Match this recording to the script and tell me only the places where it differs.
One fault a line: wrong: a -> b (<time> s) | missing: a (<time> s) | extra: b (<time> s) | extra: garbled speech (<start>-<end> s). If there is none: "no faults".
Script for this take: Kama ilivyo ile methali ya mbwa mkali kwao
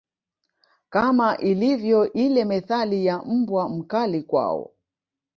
no faults